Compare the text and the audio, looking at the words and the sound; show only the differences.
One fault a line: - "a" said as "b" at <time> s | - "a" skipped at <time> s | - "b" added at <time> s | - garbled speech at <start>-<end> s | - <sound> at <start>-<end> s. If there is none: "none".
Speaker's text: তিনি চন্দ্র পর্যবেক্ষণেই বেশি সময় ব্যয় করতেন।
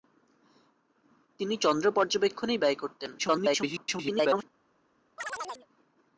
- "বেশি সময়" skipped at 2.6 s
- garbled speech at 3.2-4.4 s
- chirp at 5.2-5.7 s